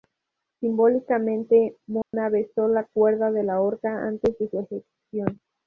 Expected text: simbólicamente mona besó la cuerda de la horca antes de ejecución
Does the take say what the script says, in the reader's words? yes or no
no